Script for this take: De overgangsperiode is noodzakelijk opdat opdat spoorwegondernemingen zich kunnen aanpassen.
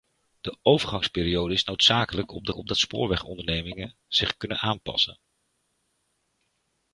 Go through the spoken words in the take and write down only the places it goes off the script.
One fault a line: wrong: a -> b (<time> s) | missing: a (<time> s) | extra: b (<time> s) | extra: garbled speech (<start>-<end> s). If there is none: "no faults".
no faults